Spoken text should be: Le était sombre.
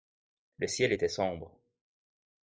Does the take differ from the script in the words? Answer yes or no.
yes